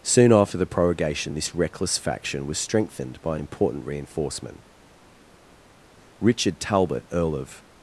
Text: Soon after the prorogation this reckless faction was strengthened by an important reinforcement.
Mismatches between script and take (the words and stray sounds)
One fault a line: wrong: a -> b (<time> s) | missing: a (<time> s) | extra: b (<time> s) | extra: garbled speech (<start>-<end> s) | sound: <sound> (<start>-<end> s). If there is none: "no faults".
extra: Richard Talbot Earl of (6.2 s)